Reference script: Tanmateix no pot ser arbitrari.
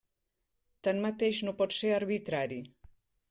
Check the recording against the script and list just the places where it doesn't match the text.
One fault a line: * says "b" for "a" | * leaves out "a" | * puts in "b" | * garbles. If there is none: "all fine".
all fine